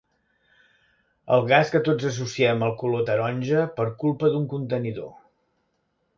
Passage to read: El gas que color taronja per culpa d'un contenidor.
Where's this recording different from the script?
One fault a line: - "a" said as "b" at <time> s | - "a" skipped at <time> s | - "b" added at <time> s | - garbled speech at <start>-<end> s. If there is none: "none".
- "tots associem al" added at 1.9 s